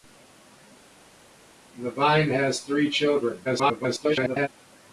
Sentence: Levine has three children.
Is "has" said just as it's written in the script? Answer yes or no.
yes